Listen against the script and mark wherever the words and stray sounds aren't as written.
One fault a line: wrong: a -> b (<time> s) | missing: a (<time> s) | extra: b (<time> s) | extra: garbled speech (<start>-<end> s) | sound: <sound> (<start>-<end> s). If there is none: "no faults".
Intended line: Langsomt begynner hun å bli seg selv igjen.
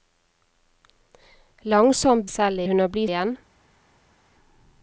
wrong: begynner -> selv (2.3 s)
missing: seg selv (3.1 s)